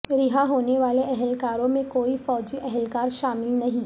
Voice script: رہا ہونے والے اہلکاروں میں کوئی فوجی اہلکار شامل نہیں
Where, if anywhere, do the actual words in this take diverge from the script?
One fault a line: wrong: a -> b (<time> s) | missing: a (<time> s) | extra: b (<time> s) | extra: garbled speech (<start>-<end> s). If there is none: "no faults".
no faults